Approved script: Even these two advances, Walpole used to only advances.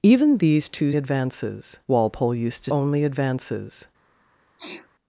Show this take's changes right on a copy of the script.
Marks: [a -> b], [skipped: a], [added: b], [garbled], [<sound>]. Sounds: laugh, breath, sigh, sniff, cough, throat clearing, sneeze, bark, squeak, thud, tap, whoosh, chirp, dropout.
Even these two advances, Walpole used to only advances. [sneeze]